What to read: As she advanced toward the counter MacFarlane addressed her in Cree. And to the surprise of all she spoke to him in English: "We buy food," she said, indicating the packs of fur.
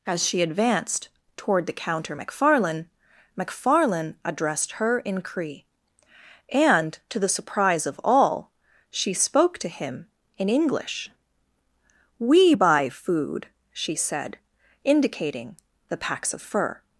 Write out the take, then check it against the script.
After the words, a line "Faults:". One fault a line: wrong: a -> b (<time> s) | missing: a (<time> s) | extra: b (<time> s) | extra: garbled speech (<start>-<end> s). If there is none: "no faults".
As she advanced toward the counter MacFarlane MacFarlane addressed her in Cree. And to the surprise of all she spoke to him in English: "We buy food," she said, indicating the packs of fur.
Faults:
extra: MacFarlane (3.4 s)